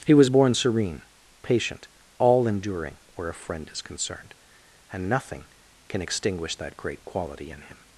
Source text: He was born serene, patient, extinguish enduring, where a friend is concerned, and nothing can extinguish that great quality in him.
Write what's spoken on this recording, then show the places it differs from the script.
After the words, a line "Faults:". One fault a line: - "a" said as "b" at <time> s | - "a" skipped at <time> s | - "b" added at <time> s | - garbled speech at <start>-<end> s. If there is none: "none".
He was born serene, patient, all enduring, where a friend is concerned, and nothing can extinguish that great quality in him.
Faults:
- "extinguish" said as "all" at 2.2 s